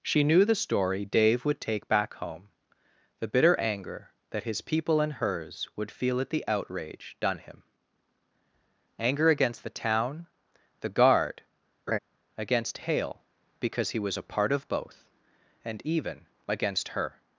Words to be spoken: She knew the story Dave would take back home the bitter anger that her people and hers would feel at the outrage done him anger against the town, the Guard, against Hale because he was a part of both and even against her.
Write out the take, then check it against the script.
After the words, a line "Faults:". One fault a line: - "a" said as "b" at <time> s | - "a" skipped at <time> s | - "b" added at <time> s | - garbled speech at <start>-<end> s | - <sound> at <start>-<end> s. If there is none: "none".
She knew the story Dave would take back home the bitter anger that his people and hers would feel at the outrage done him anger against the town, the Guard, against Hale because he was a part of both and even against her.
Faults:
- "her" said as "his" at 4.5 s
- laugh at 11.9-12.0 s